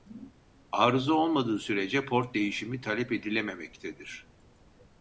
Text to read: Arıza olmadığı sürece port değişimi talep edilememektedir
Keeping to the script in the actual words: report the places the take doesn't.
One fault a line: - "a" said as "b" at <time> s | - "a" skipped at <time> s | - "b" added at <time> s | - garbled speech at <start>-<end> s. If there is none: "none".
none